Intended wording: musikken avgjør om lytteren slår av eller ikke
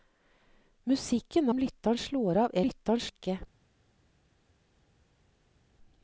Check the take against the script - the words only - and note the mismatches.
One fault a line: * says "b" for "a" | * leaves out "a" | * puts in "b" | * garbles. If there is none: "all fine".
* leaves out "avgjør"
* says "lytteren" for "eller"